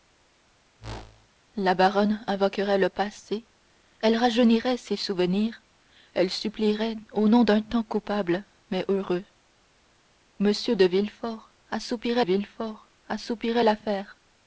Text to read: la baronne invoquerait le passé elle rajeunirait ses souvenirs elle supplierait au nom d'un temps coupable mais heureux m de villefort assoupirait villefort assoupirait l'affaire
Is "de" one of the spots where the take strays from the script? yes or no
no